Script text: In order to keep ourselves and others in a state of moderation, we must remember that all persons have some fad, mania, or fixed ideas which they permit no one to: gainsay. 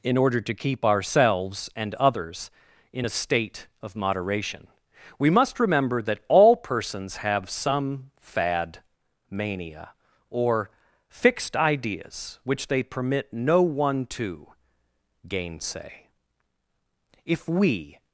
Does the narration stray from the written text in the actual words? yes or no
yes